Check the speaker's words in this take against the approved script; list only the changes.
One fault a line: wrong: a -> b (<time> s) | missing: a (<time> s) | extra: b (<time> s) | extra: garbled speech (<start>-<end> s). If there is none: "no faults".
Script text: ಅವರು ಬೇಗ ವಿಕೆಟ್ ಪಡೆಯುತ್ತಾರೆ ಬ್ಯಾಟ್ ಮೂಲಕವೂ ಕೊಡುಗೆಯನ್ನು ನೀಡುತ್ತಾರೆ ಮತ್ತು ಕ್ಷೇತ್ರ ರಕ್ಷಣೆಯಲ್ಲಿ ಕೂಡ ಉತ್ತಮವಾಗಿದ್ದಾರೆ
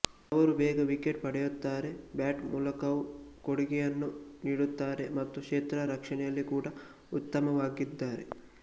no faults